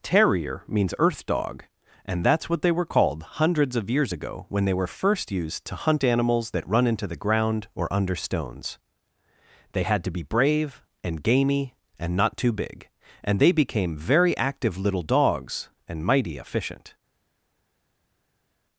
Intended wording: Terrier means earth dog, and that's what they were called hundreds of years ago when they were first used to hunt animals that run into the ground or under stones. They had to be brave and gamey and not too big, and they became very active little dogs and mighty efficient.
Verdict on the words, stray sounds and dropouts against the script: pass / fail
pass